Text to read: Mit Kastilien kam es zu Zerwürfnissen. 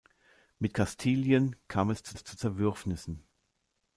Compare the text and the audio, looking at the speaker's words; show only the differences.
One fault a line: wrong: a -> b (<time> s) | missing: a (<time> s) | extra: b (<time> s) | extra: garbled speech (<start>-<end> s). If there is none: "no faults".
extra: es zu (2.1 s)